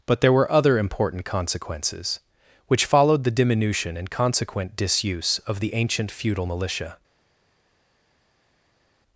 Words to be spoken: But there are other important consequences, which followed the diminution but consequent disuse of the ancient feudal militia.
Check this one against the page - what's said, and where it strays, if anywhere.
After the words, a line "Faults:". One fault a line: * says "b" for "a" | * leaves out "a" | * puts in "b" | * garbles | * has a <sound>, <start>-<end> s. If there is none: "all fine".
But there were other important consequences, which followed the diminution and consequent disuse of the ancient feudal militia.
Faults:
* says "were" for "are"
* says "and" for "but"